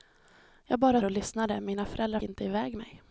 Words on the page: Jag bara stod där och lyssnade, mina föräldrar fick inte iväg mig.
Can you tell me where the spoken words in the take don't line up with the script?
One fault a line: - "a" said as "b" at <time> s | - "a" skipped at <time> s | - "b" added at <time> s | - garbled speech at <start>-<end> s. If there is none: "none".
- "stod där" skipped at 1.0 s
- "fick" skipped at 2.2 s